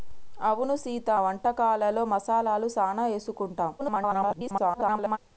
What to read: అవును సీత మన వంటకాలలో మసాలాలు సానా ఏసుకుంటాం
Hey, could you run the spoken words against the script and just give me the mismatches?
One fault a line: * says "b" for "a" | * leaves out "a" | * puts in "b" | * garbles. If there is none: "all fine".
* leaves out "మన"
* garbles